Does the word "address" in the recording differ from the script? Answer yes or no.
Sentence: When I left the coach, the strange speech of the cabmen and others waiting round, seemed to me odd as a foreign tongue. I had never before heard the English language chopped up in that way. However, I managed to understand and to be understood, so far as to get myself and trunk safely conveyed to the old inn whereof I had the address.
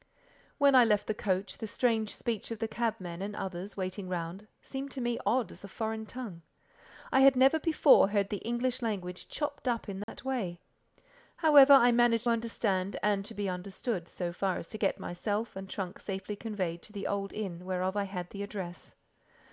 no